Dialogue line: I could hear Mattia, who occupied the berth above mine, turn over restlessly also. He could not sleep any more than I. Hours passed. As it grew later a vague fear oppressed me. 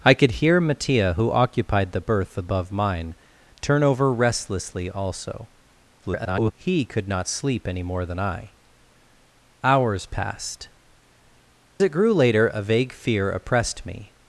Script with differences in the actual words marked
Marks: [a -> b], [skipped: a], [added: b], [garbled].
I could hear Mattia, who occupied the berth above mine, turn over restlessly also. [garbled] He could not sleep any more than I. Hours passed. [skipped: As] it grew later a vague fear oppressed me.